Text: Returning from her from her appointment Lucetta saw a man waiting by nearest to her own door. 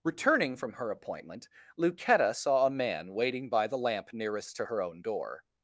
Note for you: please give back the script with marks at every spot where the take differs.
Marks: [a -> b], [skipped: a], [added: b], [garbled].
Returning from her [skipped: from her] appointment Lucetta saw a man waiting by [added: the lamp] nearest to her own door.